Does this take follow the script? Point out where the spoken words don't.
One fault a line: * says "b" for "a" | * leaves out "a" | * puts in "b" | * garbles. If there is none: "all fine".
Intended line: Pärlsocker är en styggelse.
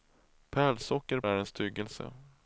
all fine